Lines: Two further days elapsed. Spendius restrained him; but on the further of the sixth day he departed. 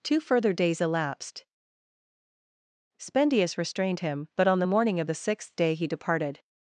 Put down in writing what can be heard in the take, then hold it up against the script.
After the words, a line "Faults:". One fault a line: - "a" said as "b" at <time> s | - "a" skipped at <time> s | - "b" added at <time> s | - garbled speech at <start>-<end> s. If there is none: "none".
Two further days elapsed. Spendius restrained him; but on the morning of the sixth day he departed.
Faults:
- "further" said as "morning" at 4.6 s